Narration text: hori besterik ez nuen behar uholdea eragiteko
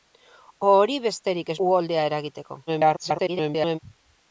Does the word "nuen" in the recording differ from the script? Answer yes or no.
yes